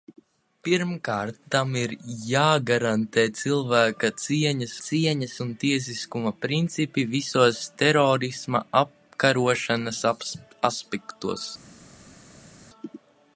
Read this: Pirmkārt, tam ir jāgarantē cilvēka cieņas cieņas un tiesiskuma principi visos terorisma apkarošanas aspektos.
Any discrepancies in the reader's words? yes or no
no